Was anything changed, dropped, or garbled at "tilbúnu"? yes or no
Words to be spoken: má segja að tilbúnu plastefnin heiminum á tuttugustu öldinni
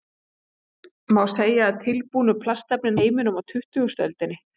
no